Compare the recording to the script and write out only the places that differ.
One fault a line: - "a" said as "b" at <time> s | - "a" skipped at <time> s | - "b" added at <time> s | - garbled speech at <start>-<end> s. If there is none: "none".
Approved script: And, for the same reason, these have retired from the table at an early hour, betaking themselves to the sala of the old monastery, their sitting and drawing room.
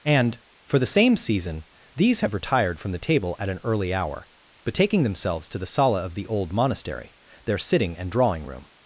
- "reason" said as "season" at 1.2 s